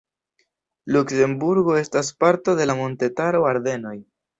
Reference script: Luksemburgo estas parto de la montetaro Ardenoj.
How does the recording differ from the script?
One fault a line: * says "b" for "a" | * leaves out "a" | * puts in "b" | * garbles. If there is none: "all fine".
all fine